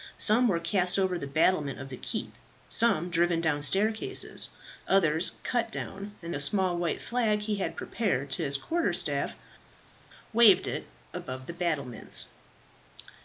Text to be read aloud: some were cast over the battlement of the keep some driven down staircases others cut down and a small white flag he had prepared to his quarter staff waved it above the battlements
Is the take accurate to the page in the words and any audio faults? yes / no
yes